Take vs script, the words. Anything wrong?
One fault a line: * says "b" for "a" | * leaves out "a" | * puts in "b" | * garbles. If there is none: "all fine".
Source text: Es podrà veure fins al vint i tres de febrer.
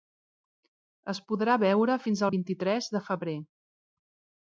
all fine